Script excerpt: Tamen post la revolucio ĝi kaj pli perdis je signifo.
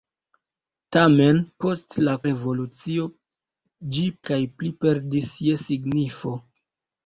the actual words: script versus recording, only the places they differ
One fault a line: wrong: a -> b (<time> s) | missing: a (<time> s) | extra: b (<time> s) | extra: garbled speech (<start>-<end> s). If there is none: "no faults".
no faults